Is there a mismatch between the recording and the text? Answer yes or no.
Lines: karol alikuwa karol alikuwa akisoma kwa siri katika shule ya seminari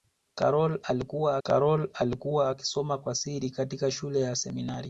no